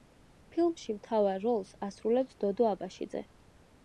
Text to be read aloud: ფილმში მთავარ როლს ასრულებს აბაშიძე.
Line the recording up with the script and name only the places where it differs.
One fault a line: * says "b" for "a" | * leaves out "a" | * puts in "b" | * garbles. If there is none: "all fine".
* puts in "დოდო"